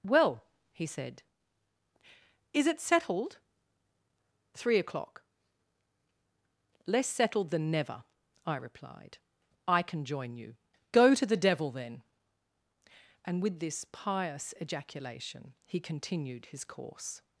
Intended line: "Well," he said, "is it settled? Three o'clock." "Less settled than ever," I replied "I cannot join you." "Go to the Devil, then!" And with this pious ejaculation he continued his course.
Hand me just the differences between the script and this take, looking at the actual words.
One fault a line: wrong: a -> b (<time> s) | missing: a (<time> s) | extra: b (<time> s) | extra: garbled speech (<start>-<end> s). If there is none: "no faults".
wrong: ever -> never (7.7 s)
wrong: cannot -> can (9.8 s)